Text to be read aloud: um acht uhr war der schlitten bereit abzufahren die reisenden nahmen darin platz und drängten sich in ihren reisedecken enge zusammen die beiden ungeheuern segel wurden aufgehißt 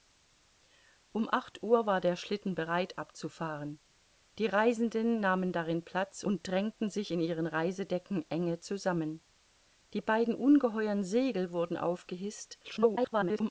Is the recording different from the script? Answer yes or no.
yes